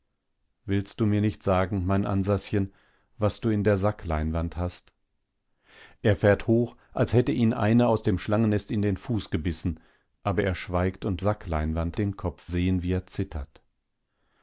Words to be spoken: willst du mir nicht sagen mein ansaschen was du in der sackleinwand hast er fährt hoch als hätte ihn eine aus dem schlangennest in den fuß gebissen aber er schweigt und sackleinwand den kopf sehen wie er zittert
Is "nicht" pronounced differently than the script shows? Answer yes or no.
no